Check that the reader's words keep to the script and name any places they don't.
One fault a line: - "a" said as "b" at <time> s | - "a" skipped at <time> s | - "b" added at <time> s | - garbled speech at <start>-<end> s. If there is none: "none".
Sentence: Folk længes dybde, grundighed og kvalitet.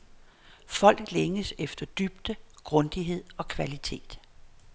- "efter" added at 1.6 s